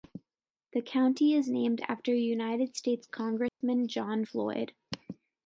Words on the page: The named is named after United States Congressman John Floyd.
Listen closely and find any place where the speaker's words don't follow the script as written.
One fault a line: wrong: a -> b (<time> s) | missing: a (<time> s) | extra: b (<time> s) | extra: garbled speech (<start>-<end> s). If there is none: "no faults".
wrong: named -> county (0.8 s)